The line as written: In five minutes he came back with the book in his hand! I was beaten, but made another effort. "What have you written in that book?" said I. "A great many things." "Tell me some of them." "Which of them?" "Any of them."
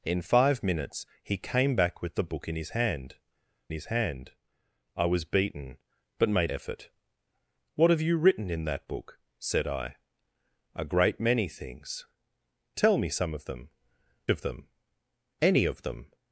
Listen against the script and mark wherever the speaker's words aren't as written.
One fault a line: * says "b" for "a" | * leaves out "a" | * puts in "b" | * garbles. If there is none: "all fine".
* puts in "his hand"
* leaves out "another"
* leaves out "Which"